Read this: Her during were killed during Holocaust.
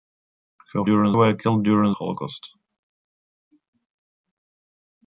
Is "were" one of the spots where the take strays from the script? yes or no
no